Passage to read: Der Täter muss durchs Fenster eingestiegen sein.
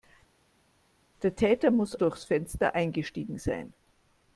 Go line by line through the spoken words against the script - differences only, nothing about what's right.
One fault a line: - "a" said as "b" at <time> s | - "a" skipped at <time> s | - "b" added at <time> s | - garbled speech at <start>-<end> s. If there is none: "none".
none